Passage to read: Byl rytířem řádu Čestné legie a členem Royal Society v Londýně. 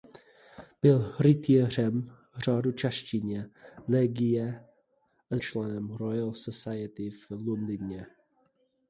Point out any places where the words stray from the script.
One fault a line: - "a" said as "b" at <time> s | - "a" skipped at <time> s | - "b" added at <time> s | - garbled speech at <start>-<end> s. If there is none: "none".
none